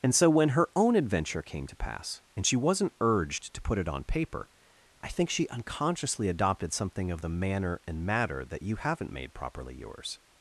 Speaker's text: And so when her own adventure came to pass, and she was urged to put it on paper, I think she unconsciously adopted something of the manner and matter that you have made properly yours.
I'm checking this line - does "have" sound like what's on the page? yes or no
no